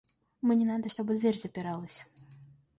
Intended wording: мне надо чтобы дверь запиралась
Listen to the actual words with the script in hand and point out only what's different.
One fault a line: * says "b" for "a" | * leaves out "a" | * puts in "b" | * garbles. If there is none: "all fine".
all fine